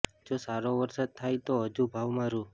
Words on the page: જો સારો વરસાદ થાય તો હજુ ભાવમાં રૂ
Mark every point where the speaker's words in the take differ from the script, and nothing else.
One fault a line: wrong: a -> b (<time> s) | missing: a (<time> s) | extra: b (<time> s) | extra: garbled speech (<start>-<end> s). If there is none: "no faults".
no faults